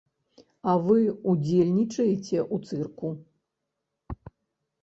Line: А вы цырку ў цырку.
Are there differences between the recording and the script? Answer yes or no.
yes